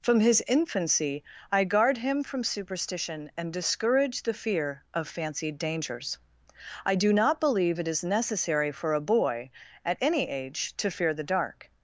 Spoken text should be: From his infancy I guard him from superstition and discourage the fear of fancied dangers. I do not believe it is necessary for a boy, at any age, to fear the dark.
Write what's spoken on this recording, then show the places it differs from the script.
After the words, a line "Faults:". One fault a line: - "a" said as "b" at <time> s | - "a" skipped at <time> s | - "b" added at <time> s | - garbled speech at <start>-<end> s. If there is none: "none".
From his infancy I guard him from superstition and discourage the fear of fancied dangers. I do not believe it is necessary for a boy, at any age, to fear the dark.
Faults:
none